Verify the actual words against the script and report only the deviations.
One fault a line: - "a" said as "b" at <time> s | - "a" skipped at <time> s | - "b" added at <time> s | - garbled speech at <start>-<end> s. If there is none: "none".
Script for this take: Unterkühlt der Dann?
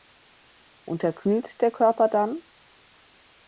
- "Körper" added at 1.7 s